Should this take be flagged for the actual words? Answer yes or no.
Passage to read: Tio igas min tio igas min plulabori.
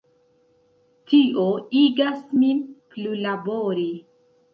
yes